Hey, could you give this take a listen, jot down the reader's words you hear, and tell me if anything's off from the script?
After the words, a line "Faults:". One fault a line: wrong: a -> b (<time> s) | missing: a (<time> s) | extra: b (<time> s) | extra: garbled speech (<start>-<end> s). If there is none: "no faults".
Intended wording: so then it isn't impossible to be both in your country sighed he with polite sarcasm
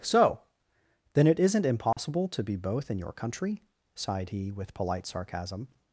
so then it isn't impossible to be both in your country sighed he with polite sarcasm
Faults:
no faults